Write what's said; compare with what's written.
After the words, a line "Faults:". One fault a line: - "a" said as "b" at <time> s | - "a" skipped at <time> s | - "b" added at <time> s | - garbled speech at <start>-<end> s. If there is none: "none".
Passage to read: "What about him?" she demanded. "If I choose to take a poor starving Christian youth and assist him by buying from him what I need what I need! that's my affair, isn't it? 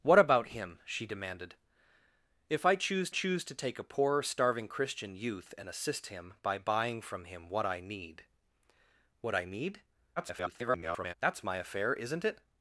"What about him?" she demanded. "If I choose choose to take a poor starving Christian youth and assist him by buying from him what I need what I need! [garbled] that's my affair, isn't it?
Faults:
- "choose" added at 3.1 s
- garbled speech at 10.2-11.1 s